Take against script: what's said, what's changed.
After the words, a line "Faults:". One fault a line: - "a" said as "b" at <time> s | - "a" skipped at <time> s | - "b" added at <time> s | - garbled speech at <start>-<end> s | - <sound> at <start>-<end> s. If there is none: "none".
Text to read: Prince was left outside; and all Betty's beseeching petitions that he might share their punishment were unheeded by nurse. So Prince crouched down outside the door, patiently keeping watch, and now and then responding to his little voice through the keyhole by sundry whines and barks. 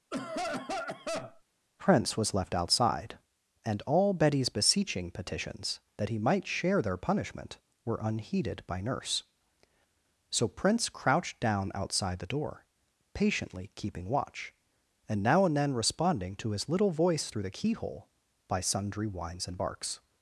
Prince was left outside; and all Betty's beseeching petitions that he might share their punishment were unheeded by nurse. So Prince crouched down outside the door, patiently keeping watch, and now and then responding to his little voice through the keyhole by sundry whines and barks.
Faults:
- cough at 0.1-1.4 s